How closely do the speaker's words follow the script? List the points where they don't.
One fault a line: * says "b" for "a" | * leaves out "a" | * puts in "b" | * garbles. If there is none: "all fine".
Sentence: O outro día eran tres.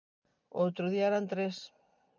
all fine